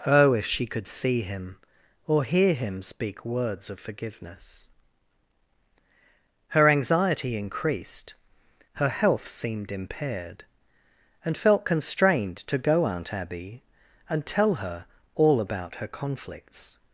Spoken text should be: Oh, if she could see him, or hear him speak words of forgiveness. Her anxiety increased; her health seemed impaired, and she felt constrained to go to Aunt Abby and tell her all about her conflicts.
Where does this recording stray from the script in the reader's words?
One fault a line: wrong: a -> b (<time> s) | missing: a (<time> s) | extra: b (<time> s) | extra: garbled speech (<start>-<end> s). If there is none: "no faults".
missing: she (11.4 s)
missing: to (12.9 s)